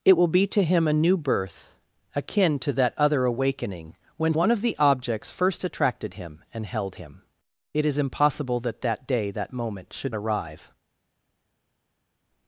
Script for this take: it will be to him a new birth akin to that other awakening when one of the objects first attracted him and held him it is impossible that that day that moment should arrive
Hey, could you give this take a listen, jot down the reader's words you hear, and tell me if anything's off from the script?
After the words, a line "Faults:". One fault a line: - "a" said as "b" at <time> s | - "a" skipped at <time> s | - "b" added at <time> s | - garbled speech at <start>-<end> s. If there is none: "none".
it will be to him a new birth akin to that other awakening when one of the objects first attracted him and held him it is impossible that that day that moment should arrive
Faults:
none